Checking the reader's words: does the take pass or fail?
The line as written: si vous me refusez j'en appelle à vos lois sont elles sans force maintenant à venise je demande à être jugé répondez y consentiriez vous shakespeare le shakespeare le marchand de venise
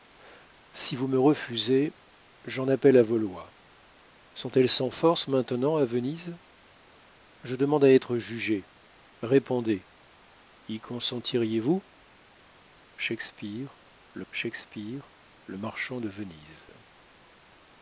pass